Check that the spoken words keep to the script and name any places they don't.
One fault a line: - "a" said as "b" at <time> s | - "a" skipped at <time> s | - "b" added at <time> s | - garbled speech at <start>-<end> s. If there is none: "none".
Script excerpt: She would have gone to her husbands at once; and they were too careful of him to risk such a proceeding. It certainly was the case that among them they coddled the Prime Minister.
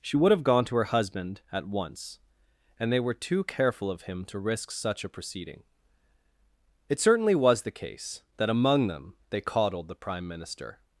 - "husbands" said as "husband" at 0.8 s